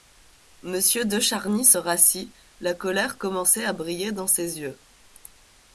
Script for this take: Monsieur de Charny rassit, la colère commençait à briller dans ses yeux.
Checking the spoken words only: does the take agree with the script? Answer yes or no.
no